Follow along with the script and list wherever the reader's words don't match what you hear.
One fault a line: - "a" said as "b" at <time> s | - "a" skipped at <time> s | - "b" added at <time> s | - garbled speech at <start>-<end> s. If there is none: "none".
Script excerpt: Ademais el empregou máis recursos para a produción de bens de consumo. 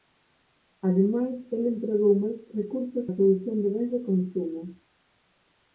- "para" skipped at 3.0 s